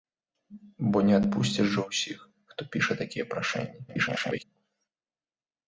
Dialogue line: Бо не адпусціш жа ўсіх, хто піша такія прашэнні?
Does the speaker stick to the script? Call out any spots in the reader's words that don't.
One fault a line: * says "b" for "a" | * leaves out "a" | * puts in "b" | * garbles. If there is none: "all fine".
* garbles